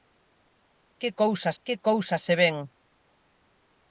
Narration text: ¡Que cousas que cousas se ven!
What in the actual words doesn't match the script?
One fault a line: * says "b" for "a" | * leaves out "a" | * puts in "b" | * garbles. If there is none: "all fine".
all fine